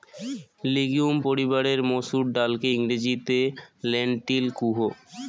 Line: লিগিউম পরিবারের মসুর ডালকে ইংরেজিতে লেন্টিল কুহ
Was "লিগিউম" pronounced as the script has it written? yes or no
yes